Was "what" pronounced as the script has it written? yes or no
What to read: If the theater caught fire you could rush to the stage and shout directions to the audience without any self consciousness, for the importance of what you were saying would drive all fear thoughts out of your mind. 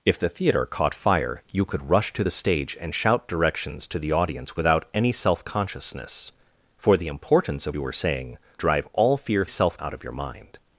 no